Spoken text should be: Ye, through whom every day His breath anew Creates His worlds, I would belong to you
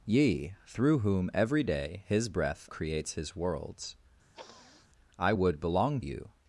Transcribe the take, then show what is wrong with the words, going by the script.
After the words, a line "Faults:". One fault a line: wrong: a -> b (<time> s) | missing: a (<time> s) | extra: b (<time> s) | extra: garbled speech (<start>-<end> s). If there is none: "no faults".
Ye, through whom every day His breath Creates His worlds, I would belong you
Faults:
missing: anew (2.7 s)
missing: to (6.0 s)